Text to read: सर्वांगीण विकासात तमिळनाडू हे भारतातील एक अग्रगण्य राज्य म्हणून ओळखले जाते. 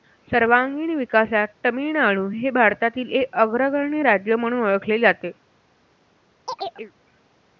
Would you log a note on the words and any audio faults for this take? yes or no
yes